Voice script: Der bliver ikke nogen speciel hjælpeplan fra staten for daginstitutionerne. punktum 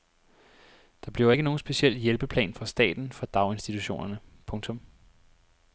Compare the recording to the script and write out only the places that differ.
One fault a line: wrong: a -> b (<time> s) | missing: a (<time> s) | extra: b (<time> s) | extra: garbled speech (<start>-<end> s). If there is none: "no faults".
no faults